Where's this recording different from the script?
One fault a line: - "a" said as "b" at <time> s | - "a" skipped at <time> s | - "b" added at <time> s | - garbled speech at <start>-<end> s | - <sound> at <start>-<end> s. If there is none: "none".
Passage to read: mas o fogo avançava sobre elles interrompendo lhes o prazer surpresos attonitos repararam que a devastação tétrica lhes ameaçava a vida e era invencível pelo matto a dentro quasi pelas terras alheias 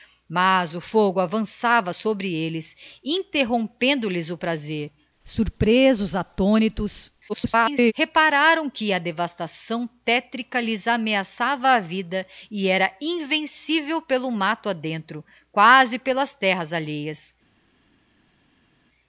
- garbled speech at 7.3-7.9 s